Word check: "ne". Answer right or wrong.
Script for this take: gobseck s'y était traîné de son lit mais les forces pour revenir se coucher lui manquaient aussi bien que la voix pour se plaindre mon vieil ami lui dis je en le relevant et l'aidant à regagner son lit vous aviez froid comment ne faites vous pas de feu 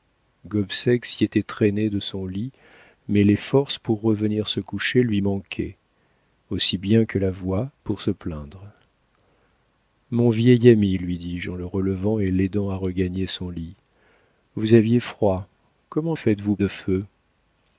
wrong